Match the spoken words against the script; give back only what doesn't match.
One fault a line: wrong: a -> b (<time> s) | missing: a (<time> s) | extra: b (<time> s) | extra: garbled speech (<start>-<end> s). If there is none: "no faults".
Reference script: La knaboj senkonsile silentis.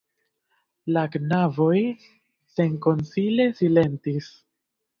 no faults